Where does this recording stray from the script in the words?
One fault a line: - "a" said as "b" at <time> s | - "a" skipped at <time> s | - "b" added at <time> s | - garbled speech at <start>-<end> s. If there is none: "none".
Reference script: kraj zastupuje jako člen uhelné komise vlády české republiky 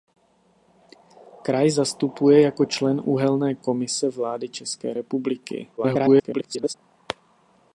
- garbled speech at 5.8-6.7 s